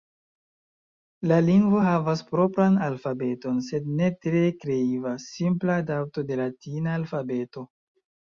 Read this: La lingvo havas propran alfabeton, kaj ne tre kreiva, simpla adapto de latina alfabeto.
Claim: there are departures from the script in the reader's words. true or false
true